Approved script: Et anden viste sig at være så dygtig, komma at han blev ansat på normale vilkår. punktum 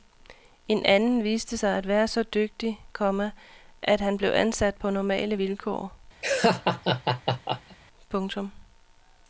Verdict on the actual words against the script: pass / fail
fail